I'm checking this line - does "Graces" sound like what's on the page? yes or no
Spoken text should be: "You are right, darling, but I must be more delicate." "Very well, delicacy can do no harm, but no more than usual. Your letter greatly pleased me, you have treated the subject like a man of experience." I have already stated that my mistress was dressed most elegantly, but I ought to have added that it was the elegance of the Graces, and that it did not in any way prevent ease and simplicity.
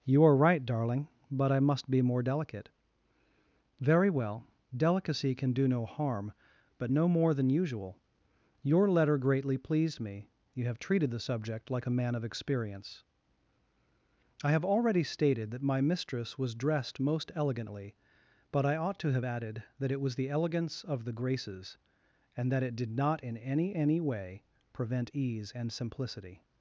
yes